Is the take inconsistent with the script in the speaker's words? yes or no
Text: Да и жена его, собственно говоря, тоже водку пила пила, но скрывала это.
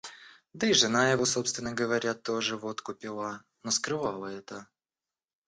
yes